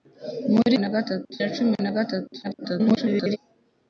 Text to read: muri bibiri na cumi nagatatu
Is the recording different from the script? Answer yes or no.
yes